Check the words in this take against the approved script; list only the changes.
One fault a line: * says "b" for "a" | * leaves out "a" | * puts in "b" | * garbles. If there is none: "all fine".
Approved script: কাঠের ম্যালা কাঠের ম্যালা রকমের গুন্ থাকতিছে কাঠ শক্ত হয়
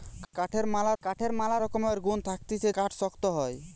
all fine